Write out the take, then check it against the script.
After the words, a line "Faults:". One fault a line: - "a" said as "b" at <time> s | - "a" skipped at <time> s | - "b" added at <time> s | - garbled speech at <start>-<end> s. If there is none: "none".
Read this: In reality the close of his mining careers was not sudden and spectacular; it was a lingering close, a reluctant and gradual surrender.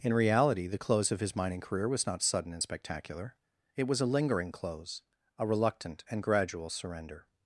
In reality the close of his mining career was not sudden and spectacular; it was a lingering close, a reluctant and gradual surrender.
Faults:
- "careers" said as "career" at 1.6 s